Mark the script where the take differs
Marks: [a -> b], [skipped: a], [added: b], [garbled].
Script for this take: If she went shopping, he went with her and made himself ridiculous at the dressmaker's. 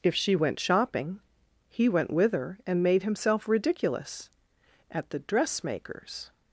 If she went shopping, he went with her and made himself ridiculous at the dressmaker's.